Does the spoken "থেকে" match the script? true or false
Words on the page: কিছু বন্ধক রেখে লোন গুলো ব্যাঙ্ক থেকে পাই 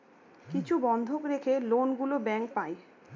false